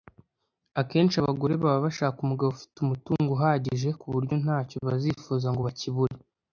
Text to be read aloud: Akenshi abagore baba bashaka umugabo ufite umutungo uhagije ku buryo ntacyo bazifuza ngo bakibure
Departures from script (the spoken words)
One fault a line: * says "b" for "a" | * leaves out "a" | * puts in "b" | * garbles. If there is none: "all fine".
all fine